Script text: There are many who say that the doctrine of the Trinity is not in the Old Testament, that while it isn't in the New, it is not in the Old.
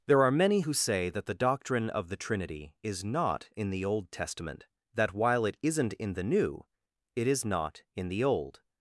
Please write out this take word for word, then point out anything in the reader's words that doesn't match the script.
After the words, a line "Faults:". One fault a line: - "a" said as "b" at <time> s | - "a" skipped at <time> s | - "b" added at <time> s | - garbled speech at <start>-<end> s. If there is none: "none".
There are many who say that the doctrine of the Trinity is not in the Old Testament, that while it isn't in the New, it is not in the Old.
Faults:
none